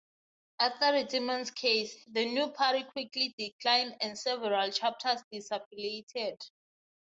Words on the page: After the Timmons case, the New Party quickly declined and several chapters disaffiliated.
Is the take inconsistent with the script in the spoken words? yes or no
no